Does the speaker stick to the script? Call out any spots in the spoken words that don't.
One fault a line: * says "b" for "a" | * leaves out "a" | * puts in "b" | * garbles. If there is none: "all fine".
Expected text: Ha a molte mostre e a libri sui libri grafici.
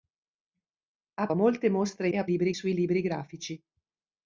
all fine